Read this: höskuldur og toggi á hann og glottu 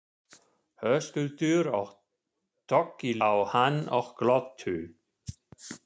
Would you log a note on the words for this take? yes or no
no